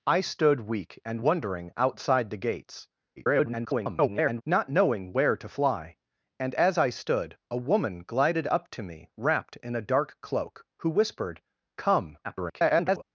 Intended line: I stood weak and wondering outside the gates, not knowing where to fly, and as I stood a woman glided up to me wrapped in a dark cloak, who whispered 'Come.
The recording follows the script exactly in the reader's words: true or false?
false